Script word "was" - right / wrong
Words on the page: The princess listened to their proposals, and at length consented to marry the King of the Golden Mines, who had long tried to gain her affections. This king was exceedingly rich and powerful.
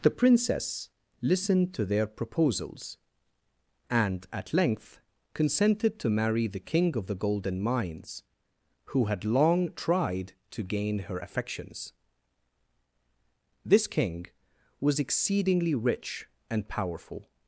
right